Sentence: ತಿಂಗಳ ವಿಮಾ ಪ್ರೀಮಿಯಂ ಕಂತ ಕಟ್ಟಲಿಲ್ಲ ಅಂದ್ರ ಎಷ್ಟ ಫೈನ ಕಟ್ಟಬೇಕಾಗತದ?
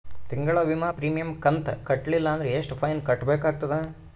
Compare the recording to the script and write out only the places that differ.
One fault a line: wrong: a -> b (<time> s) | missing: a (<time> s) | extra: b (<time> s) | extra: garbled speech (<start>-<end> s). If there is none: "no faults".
no faults